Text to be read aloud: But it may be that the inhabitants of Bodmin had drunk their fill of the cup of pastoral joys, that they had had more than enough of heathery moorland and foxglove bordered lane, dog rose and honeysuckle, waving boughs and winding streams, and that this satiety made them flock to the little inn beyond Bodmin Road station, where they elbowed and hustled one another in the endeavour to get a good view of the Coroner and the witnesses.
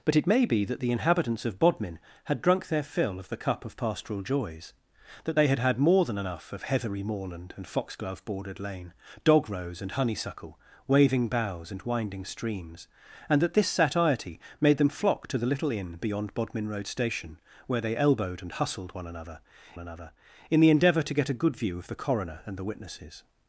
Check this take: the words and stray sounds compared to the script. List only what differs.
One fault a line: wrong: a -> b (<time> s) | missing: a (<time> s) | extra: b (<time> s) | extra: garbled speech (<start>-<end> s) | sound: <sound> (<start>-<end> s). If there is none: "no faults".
extra: another (19.8 s)